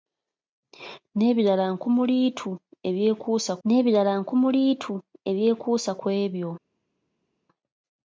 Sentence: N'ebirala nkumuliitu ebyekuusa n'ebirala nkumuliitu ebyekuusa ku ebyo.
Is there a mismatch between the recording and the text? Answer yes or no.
no